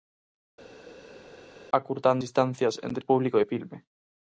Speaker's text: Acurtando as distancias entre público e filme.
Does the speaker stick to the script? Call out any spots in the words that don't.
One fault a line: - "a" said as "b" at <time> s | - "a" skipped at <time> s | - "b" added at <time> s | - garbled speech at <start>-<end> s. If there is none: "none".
- "as" skipped at 2.2 s